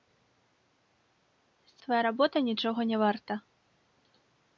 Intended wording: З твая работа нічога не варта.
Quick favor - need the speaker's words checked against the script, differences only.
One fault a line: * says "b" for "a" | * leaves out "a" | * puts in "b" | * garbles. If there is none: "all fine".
all fine